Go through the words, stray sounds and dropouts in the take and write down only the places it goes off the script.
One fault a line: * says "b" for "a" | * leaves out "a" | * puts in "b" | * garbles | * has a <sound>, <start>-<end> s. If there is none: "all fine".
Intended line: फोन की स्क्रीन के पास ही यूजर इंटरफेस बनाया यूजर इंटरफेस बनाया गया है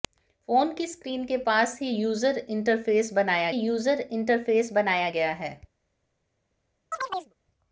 * has a chirp, 6.9-7.3 s